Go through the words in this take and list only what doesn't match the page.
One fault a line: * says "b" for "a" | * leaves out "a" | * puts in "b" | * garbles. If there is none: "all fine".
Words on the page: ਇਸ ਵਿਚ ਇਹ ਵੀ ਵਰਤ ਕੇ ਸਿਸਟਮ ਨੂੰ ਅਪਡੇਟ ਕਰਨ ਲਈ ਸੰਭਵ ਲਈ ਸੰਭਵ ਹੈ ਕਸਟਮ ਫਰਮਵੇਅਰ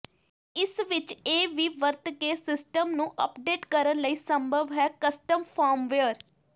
* leaves out "ਲਈ ਸੰਭਵ"